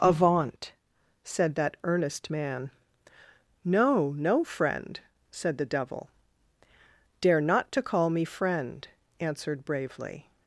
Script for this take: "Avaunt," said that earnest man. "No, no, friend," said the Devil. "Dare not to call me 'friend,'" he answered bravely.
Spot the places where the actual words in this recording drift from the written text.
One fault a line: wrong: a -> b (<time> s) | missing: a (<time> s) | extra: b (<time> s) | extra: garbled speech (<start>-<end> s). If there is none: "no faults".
missing: he (8.9 s)